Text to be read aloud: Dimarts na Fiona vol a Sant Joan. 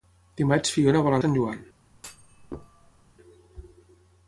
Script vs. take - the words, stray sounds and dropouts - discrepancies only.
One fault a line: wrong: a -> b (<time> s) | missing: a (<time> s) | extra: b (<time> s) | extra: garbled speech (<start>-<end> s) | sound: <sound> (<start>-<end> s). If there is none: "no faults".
sound: thud (1.9-3.1 s)